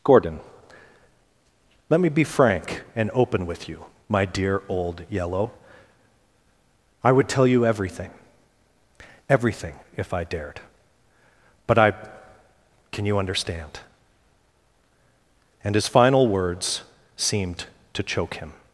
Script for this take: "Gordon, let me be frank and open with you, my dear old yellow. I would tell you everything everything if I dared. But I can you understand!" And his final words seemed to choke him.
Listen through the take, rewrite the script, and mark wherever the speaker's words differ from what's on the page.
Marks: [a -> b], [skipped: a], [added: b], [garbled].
"Gordon, let me be frank and open with you, my dear old yellow. I would tell you everything everything if I dared. But I can you understand!" And his final words seemed to choke him.